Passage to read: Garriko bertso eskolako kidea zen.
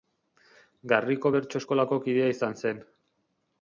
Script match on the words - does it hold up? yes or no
no